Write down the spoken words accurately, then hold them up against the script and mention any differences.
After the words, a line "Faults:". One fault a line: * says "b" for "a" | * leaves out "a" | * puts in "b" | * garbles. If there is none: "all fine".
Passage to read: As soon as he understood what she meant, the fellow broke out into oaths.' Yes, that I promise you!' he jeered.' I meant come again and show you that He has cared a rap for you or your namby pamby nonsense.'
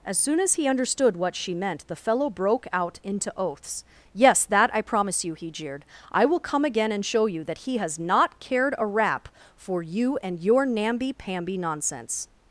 As soon as he understood what she meant, the fellow broke out into oaths.' Yes, that I promise you!' he jeered.' I will come again and show you that He has not cared a rap for you and your namby pamby nonsense.'
Faults:
* says "will" for "meant"
* puts in "not"
* says "and" for "or"